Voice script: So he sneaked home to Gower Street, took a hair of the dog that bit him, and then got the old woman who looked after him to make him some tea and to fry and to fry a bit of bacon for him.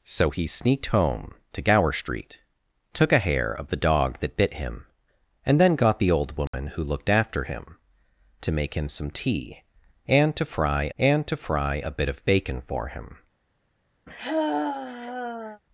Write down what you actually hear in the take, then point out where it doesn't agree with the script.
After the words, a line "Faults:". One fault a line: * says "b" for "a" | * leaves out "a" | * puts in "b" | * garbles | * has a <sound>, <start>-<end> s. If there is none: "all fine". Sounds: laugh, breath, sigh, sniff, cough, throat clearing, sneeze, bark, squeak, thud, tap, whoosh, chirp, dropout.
So he sneaked home to Gower Street, took a hair of the dog that bit him, and then got the old woman who looked after him to make him some tea and to fry and to fry a bit of bacon for him.
Faults:
* has a dropout, 6.5-6.5 s
* has a sigh, 14.1-15.6 s